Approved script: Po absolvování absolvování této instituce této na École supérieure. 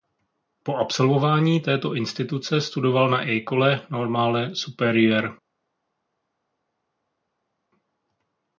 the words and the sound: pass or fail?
fail